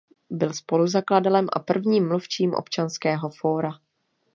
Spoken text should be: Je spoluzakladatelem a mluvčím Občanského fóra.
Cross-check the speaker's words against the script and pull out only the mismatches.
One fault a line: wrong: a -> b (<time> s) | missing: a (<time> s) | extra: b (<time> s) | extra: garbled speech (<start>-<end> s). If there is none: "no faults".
wrong: Je -> Byl (0.3 s)
extra: prvním (1.6 s)